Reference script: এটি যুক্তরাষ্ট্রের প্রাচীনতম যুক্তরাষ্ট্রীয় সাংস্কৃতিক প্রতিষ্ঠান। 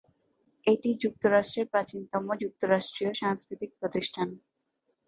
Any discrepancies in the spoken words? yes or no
no